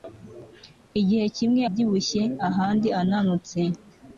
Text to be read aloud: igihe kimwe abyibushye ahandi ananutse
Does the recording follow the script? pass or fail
pass